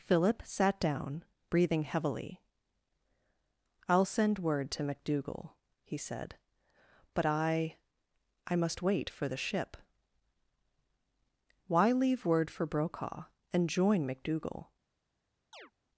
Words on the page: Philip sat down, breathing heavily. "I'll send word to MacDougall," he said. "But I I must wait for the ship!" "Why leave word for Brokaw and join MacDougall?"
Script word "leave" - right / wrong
right